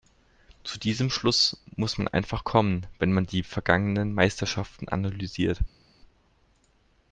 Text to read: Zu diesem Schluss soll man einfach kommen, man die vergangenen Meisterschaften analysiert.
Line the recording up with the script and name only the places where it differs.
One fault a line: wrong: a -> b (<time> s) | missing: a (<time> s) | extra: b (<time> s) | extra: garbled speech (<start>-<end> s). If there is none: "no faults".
wrong: soll -> muss (1.8 s)
extra: wenn (3.0 s)